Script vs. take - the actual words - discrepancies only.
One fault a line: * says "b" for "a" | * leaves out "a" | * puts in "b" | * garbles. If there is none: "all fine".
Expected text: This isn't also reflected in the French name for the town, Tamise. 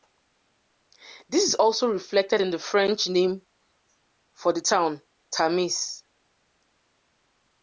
* says "is" for "isn't"